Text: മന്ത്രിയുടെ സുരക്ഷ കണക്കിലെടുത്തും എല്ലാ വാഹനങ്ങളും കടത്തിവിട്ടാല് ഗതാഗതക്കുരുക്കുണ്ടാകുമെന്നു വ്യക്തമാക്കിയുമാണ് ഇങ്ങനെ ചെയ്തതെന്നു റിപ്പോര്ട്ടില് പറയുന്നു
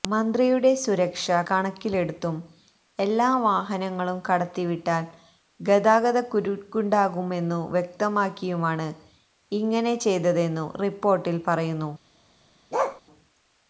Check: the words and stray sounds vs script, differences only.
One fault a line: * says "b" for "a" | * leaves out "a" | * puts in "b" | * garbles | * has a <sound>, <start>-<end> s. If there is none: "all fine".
* has a bark, 12.7-13.0 s